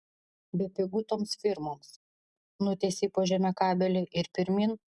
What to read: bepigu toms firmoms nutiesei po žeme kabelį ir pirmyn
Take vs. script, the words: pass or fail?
pass